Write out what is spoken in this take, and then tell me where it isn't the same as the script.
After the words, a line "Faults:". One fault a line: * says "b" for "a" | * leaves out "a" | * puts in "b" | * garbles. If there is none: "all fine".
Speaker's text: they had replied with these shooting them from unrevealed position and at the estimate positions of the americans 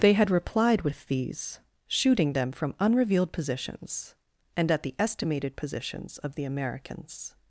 they had replied with these shooting them from unrevealed positions and at the estimated positions of the americans
Faults:
* says "positions" for "position"
* says "estimated" for "estimate"